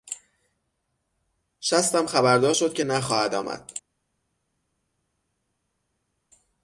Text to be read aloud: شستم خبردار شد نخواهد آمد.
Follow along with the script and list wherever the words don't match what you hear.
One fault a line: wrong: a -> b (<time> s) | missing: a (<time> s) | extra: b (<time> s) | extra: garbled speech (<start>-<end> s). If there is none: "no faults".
extra: که (2.7 s)